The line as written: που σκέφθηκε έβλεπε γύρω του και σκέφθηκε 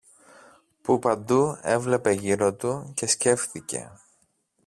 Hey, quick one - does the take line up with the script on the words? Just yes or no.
no